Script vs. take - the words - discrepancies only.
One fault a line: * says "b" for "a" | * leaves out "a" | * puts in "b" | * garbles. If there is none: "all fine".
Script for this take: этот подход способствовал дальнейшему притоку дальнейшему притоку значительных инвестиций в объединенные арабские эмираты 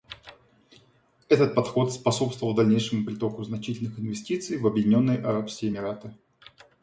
* leaves out "дальнейшему притоку"